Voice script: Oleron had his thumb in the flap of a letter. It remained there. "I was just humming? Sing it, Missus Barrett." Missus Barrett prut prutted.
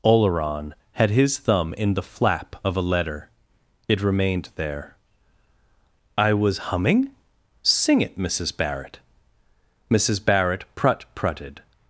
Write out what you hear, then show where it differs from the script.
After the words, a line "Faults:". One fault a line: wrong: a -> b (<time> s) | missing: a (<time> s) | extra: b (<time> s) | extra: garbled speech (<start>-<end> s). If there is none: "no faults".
Oleron had his thumb in the flap of a letter. It remained there. "I was humming? Sing it, Missus Barrett." Missus Barrett prut prutted.
Faults:
missing: just (6.7 s)